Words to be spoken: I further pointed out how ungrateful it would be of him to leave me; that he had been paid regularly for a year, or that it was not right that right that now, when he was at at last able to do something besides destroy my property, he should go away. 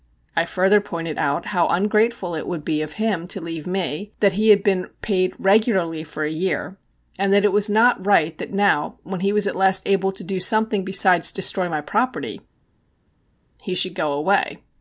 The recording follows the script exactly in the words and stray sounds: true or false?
false